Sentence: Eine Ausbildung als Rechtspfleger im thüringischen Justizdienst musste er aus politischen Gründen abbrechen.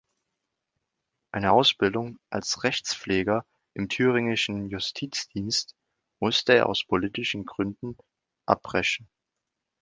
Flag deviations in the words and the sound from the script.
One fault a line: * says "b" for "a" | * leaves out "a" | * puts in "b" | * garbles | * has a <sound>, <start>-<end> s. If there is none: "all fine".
all fine